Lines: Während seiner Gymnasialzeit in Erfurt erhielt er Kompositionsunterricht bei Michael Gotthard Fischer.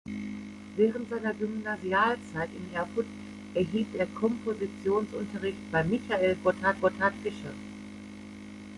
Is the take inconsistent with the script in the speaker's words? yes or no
yes